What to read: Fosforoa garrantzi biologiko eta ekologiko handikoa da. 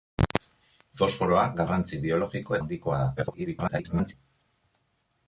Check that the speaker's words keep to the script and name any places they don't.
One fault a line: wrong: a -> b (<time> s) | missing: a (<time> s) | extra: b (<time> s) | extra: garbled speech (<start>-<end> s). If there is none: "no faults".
missing: eta ekologiko (2.6 s)
extra: garbled speech (3.2-4.1 s)